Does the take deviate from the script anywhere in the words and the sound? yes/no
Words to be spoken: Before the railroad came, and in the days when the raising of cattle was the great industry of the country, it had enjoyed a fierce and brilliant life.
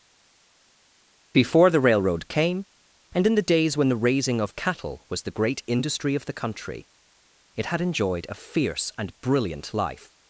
no